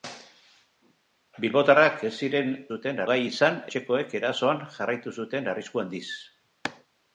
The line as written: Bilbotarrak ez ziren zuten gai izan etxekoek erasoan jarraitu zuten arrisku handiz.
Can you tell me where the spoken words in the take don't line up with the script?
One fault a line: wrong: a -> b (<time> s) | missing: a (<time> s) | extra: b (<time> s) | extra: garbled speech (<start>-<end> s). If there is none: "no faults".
no faults